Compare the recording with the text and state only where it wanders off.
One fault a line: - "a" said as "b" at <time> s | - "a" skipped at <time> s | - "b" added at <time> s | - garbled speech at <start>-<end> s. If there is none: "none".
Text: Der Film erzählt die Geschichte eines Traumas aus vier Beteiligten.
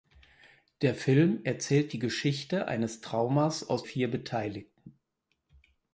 none